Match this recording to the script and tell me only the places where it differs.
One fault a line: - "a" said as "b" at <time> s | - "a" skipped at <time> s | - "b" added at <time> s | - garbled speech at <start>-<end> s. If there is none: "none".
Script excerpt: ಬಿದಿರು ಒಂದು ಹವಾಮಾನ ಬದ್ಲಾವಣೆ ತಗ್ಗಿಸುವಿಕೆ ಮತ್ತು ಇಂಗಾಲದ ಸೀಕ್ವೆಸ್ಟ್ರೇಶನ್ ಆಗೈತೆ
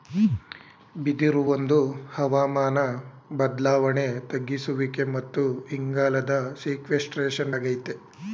none